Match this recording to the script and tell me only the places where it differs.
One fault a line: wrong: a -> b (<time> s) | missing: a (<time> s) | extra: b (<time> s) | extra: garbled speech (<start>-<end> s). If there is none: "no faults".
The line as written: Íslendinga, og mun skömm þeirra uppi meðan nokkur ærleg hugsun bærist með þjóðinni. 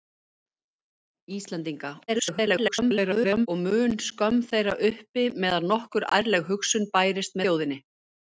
extra: garbled speech (2.1-3.5 s)
missing: með (7.4 s)